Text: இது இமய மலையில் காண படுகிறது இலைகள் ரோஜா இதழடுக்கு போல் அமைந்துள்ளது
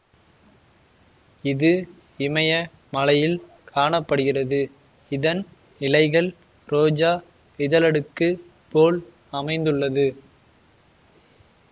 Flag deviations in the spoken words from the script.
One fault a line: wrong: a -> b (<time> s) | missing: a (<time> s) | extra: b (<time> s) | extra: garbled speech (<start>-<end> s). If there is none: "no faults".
extra: இதன் (5.1 s)